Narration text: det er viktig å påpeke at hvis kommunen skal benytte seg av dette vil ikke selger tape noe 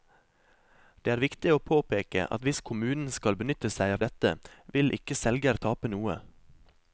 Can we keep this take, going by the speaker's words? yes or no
yes